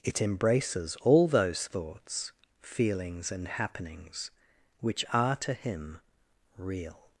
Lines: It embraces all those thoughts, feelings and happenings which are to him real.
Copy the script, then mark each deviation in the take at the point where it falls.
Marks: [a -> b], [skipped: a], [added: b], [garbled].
It embraces all those thoughts, feelings and happenings which are to him real.